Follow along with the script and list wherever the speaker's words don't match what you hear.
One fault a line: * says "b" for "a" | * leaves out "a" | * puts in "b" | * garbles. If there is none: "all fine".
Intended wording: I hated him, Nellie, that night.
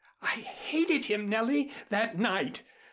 all fine